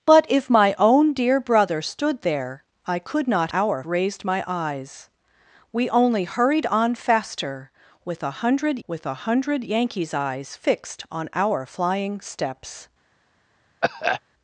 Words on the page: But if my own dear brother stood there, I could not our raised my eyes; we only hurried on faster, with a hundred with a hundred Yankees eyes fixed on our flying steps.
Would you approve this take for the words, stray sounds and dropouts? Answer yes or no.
no